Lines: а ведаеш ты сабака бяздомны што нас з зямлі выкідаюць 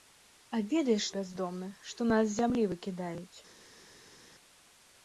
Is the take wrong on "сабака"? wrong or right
wrong